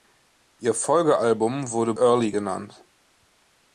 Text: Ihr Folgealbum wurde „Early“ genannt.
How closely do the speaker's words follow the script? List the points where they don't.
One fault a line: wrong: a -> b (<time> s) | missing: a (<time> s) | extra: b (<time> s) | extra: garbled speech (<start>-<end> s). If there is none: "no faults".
no faults